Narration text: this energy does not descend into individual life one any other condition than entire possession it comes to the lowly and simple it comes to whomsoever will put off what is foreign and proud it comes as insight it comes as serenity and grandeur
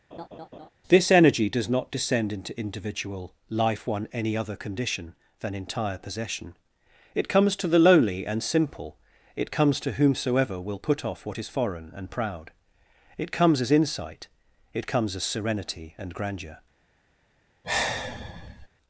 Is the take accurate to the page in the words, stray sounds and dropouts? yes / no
no